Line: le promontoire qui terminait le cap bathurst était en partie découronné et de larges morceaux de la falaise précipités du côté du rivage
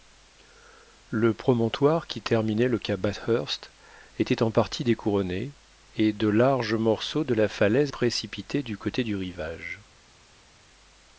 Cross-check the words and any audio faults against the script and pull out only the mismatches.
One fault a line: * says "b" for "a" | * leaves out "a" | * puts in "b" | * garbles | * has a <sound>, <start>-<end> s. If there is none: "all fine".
all fine